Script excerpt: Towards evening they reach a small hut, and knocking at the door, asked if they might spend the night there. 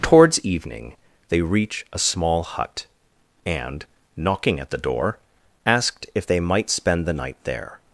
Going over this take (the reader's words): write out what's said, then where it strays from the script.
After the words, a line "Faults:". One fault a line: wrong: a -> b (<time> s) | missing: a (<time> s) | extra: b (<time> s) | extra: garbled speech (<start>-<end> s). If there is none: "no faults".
Towards evening they reach a small hut, and knocking at the door, asked if they might spend the night there.
Faults:
no faults